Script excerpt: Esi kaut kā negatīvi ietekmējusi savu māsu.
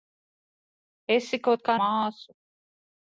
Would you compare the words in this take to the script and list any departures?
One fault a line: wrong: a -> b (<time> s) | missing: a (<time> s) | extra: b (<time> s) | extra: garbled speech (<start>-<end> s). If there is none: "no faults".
missing: negatīvi ietekmējusi savu (1.8 s)